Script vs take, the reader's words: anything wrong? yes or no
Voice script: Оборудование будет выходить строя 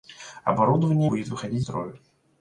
no